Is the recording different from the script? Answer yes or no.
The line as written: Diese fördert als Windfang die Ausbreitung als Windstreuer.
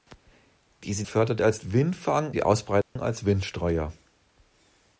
no